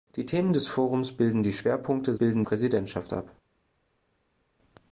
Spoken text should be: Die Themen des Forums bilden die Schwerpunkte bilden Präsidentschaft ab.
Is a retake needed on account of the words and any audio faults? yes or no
no